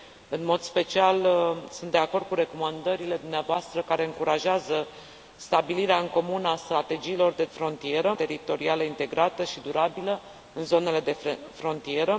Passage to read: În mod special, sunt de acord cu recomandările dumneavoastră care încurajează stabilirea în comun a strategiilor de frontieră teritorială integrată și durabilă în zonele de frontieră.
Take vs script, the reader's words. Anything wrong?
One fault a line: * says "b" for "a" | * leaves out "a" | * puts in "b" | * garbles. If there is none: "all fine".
all fine